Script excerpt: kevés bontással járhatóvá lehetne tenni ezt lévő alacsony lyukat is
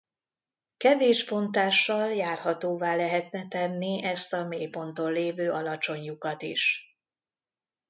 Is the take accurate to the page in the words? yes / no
no